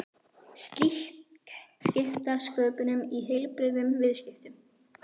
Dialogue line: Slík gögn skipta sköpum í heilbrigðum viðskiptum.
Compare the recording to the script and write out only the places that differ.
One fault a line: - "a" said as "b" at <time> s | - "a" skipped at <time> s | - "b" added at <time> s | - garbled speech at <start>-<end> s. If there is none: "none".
- "gögn" skipped at 1.5 s